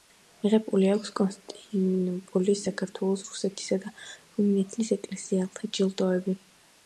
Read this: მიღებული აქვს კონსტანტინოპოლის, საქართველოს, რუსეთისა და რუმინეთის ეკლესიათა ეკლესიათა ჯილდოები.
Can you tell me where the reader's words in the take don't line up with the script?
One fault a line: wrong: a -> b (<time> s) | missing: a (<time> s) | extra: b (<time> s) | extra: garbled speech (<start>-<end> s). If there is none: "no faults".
missing: ეკლესიათა (5.7 s)